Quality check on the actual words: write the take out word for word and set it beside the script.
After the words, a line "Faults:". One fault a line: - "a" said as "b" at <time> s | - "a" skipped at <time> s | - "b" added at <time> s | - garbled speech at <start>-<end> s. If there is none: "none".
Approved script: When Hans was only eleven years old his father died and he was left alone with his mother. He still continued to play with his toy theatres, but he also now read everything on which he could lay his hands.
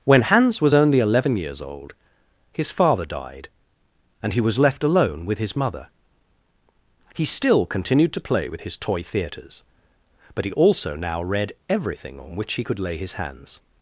When Hans was only eleven years old his father died and he was left alone with his mother. He still continued to play with his toy theatres, but he also now read everything on which he could lay his hands.
Faults:
none